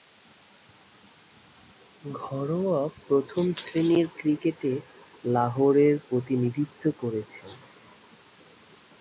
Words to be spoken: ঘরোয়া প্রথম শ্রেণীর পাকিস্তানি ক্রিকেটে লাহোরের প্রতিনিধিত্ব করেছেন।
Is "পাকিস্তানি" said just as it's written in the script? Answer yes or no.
no